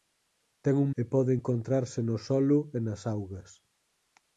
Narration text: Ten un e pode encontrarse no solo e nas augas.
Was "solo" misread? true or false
false